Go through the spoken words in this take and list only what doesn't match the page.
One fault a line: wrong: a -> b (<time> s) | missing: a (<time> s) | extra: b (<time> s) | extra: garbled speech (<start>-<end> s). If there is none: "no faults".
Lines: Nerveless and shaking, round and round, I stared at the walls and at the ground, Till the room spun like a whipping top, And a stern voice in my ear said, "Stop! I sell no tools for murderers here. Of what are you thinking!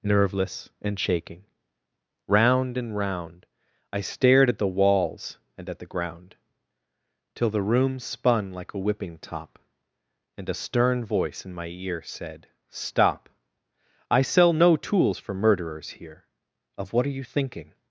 no faults